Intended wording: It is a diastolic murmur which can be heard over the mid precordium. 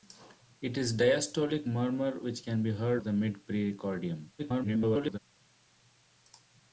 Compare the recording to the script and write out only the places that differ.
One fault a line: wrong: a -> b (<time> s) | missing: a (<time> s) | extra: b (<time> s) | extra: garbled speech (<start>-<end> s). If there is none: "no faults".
missing: over (3.0 s)
extra: garbled speech (4.4-5.2 s)